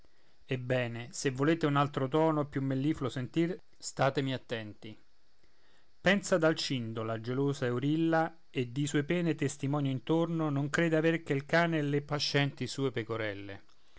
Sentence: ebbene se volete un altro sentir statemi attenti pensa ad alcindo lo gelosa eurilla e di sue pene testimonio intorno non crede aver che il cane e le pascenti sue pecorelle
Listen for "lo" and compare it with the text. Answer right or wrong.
wrong